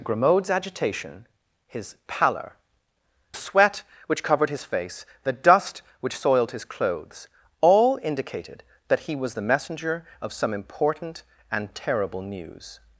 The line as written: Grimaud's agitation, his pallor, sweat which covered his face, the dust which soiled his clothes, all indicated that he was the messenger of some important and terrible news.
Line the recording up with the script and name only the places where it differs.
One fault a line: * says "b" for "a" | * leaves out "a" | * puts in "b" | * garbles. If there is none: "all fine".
all fine